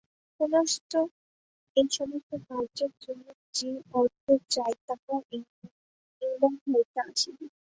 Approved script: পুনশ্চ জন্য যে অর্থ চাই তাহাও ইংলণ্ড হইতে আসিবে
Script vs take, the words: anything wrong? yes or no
yes